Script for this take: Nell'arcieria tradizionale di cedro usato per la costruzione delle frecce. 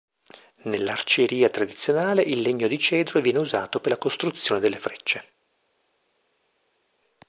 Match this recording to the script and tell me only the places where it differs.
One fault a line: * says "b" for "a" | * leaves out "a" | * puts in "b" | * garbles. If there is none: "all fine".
* puts in "il legno"
* puts in "viene"